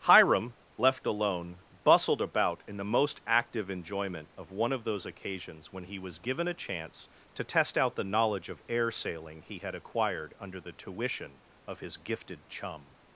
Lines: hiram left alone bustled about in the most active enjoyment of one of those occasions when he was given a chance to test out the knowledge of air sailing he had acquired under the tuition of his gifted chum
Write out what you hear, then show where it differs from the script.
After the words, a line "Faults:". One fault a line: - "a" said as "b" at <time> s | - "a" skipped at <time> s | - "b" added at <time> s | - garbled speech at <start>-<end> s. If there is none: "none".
hiram left alone bustled about in the most active enjoyment of one of those occasions when he was given a chance to test out the knowledge of air sailing he had acquired under the tuition of his gifted chum
Faults:
none